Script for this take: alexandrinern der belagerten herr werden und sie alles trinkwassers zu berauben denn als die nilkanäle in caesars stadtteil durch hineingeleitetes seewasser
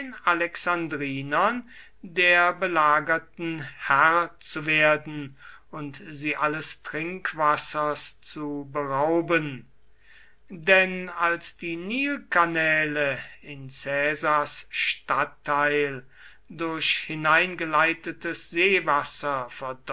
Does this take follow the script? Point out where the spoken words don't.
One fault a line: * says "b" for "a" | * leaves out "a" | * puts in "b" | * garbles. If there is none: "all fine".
* puts in "zu"